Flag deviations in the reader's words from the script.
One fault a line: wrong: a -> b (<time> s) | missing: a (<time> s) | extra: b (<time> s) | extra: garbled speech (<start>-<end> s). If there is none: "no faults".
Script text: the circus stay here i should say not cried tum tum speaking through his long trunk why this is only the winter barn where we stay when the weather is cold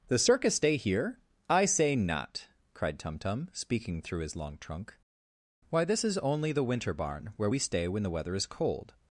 missing: should (1.6 s)